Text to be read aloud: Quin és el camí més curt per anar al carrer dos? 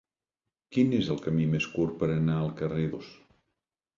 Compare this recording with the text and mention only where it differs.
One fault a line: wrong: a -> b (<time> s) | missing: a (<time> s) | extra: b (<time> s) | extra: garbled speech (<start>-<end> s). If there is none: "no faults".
no faults